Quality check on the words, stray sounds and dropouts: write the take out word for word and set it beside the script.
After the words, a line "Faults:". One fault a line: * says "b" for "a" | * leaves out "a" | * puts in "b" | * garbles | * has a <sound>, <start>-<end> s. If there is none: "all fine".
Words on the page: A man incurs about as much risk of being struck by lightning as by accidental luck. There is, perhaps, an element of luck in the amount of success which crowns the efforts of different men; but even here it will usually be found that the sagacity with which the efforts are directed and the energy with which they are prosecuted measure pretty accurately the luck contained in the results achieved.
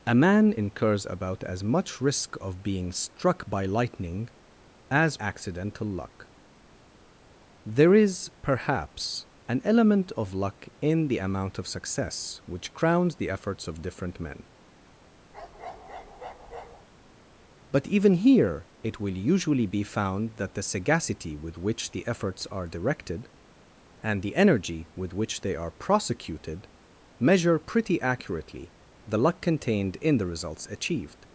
A man incurs about as much risk of being struck by lightning as accidental luck. There is, perhaps, an element of luck in the amount of success which crowns the efforts of different men; but even here it will usually be found that the sagacity with which the efforts are directed and the energy with which they are prosecuted measure pretty accurately the luck contained in the results achieved.
Faults:
* leaves out "by"
* has a bark, 15.3-16.9 s